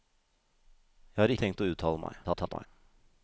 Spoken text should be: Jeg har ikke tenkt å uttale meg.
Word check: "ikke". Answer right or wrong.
wrong